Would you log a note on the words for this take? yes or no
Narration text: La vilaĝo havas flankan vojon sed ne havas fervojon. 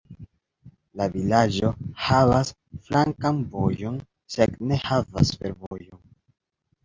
no